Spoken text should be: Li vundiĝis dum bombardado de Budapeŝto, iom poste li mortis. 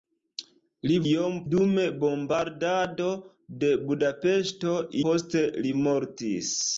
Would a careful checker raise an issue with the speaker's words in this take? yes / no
yes